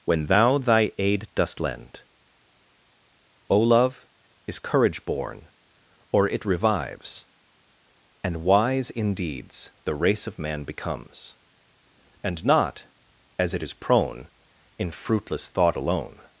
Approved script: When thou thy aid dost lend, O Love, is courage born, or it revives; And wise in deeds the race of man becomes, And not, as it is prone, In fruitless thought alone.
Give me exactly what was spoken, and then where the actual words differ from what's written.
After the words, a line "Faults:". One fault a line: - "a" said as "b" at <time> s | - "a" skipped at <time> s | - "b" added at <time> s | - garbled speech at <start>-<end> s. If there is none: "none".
When thou thy aid dost lend, O Love, is courage born, or it revives; And wise in deeds the race of man becomes, And not, as it is prone, In fruitless thought alone.
Faults:
none